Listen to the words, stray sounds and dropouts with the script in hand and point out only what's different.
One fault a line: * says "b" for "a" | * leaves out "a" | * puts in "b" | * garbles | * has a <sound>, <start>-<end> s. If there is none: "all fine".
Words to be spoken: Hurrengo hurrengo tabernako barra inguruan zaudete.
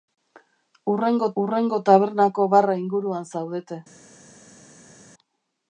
all fine